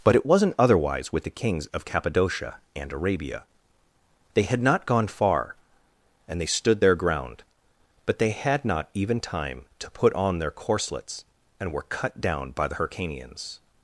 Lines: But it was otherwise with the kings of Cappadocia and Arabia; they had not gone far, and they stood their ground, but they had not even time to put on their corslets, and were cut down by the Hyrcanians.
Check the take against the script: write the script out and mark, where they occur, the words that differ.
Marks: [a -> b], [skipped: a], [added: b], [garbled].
But it [was -> wasn't] otherwise with the kings of Cappadocia and Arabia; they had not gone far, and they stood their ground, but they had not even time to put on their corslets, and were cut down by the Hyrcanians.